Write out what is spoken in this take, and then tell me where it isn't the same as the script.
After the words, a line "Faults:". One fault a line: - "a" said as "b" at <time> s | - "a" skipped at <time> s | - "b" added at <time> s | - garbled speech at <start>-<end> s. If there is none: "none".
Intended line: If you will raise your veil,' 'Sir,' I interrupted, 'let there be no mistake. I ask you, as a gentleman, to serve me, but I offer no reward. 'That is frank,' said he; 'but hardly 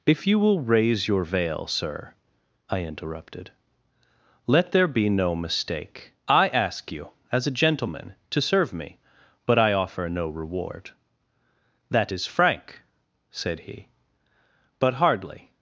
If you will raise your veil,' 'Sir,' I interrupted, 'let there be no mistake. I ask you, as a gentleman, to serve me, but I offer no reward. 'That is frank,' said he; 'but hardly
Faults:
none